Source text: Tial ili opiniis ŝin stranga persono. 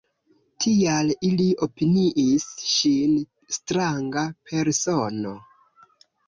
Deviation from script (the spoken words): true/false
false